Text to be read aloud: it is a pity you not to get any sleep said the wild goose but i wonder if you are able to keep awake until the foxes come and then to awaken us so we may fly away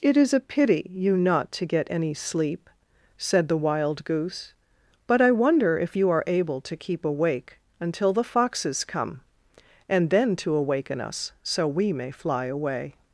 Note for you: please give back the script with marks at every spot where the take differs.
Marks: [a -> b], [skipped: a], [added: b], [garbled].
it is a pity you not to get any sleep said the wild goose but i wonder if you are able to keep awake until the foxes come and then to awaken us so we may fly away